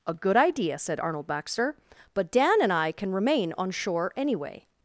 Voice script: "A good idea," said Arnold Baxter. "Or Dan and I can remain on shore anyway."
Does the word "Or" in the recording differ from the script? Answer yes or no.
yes